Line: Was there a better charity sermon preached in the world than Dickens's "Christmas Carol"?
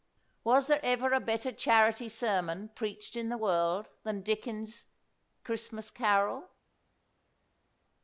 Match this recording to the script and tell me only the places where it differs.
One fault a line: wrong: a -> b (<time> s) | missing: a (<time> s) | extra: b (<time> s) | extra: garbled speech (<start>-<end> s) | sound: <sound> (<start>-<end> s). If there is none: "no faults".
extra: ever (0.8 s)